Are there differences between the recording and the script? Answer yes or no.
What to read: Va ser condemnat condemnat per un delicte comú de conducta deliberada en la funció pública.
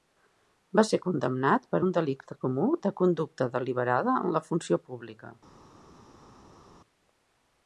yes